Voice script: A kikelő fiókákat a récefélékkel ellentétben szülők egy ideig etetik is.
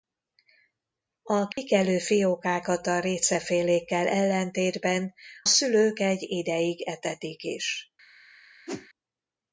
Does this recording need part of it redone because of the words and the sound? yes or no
yes